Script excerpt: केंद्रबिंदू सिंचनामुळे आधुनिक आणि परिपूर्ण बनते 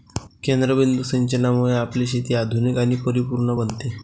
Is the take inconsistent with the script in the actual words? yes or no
yes